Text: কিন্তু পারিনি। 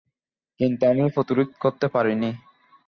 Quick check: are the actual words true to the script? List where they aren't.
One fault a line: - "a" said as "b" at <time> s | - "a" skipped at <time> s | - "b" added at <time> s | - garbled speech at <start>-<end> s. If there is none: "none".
- "আমি প্রতিরোধ করতে" added at 0.9 s